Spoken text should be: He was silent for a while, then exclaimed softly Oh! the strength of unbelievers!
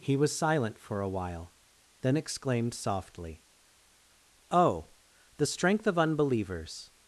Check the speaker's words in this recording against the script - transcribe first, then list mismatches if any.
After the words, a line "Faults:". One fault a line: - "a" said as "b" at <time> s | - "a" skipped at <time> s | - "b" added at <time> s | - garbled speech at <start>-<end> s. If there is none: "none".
He was silent for a while, then exclaimed softly Oh! the strength of unbelievers!
Faults:
none